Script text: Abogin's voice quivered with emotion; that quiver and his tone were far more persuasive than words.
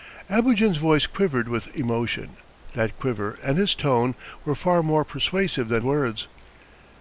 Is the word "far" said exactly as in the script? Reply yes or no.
yes